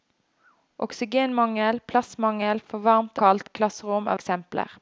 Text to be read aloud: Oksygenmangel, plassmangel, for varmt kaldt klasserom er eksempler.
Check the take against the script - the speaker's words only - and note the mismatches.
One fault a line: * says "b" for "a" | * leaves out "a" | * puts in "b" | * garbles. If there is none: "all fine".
all fine